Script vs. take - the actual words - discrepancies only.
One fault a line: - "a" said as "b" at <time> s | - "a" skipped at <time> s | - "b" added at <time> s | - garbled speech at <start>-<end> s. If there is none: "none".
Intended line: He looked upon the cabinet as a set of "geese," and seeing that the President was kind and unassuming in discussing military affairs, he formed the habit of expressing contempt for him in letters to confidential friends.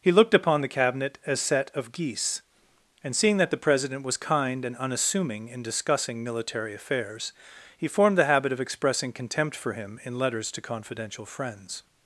- "a" skipped at 1.4 s